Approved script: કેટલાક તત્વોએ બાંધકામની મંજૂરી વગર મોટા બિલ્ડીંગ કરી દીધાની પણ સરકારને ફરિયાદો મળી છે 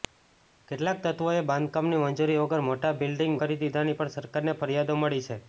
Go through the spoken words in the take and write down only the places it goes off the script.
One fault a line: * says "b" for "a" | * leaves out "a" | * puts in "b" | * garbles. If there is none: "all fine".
all fine